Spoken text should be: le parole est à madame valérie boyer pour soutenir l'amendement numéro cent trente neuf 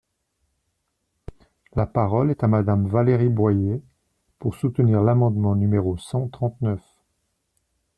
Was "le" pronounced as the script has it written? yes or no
no